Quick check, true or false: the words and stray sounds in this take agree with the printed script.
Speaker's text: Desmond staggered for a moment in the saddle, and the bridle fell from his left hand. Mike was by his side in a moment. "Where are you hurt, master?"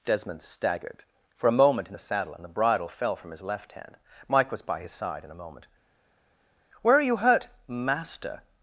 true